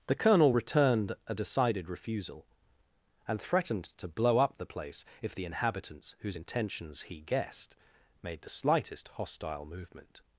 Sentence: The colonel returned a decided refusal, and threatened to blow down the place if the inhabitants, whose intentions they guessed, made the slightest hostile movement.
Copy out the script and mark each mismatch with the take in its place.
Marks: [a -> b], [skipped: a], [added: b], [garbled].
The colonel returned a decided refusal, and threatened to blow [down -> up] the place if the inhabitants, whose intentions [they -> he] guessed, made the slightest hostile movement.